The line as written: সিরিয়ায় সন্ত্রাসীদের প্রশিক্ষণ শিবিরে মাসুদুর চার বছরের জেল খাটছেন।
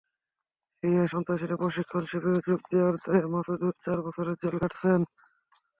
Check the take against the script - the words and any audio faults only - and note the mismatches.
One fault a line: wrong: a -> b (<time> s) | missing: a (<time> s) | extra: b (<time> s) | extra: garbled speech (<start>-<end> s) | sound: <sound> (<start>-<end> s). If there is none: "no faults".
extra: যোগ দেওয়ার দায়ে (2.5 s)